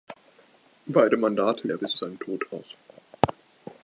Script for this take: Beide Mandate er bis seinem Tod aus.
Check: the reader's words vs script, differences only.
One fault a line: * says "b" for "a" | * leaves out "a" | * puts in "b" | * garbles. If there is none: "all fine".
all fine